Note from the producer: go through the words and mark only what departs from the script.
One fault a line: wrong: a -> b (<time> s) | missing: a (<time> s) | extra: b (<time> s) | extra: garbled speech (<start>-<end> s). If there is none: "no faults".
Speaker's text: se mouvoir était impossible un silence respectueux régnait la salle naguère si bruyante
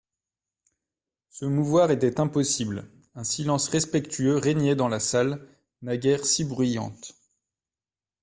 extra: dans (4.8 s)